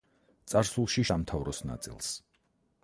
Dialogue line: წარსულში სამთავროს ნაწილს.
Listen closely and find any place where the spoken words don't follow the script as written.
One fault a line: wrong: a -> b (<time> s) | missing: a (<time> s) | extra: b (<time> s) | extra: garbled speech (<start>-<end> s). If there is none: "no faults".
no faults